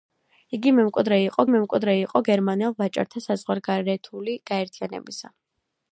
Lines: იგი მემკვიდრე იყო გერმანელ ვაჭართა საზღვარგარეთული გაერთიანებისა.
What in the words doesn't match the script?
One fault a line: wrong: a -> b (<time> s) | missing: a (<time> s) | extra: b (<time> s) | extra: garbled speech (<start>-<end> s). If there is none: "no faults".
extra: მემკვიდრე იყო (1.5 s)